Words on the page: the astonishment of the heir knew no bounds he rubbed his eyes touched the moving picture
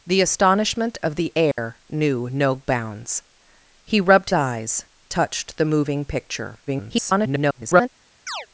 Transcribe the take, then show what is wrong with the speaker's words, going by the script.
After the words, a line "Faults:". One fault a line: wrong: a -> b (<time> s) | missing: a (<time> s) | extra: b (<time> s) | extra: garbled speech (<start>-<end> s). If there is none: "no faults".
the astonishment of the heir knew no bounds he rubbed eyes touched the moving picture [garbled]
Faults:
missing: his (4.3 s)
extra: garbled speech (6.7-7.9 s)